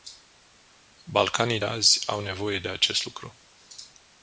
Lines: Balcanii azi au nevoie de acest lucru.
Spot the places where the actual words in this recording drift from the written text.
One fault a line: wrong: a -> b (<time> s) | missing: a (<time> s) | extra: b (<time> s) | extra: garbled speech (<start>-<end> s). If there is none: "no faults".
no faults